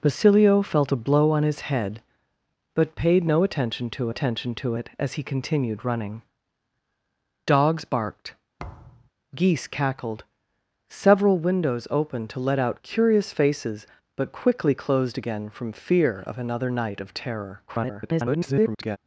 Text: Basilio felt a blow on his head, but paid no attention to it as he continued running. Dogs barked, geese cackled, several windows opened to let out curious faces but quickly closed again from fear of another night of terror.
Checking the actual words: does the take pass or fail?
fail